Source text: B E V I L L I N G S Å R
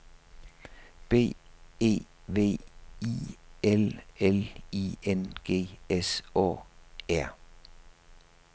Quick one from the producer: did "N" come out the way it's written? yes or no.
yes